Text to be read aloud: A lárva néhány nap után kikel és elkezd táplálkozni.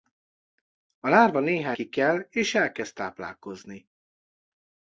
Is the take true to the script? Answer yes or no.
no